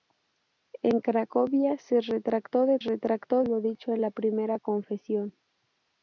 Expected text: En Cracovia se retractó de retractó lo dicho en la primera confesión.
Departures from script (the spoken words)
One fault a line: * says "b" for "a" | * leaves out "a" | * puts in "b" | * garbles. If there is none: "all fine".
all fine